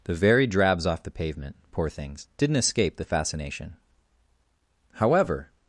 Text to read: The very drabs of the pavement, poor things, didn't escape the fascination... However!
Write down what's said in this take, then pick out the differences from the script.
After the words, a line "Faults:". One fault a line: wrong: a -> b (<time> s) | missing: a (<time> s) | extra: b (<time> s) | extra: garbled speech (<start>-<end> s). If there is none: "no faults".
The very drabs off the pavement, poor things, didn't escape the fascination... However!
Faults:
wrong: of -> off (0.8 s)